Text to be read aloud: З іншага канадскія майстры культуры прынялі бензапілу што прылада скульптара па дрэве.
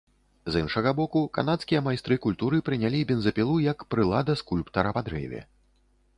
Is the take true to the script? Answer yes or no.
no